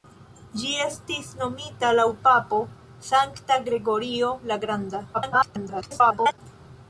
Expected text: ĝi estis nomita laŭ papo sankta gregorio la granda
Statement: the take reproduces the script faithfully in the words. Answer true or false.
false